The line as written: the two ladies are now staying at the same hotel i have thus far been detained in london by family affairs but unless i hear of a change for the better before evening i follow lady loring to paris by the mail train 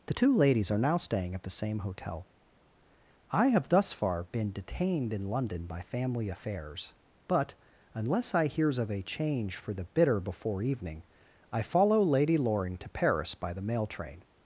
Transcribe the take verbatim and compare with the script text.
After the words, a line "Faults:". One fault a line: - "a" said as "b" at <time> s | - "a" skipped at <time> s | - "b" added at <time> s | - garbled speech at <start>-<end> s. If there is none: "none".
the two ladies are now staying at the same hotel i have thus far been detained in london by family affairs but unless i hears of a change for the bitter before evening i follow lady loring to paris by the mail train
Faults:
- "hear" said as "hears" at 8.5 s
- "better" said as "bitter" at 9.8 s